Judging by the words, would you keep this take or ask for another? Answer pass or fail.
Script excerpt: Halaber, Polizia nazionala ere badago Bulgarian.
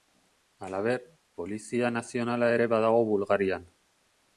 pass